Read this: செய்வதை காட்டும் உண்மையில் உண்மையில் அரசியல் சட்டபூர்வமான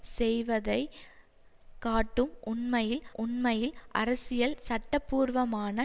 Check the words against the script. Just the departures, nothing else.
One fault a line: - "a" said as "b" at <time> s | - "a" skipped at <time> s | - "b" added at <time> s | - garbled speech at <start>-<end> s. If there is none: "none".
none